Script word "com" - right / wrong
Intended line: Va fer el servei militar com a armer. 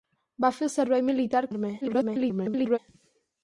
wrong